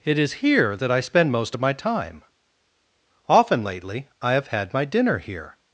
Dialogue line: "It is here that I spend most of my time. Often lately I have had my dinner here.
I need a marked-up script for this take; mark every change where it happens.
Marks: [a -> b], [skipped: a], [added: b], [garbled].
"It is here that I spend most of my time. Often lately I have had my dinner here.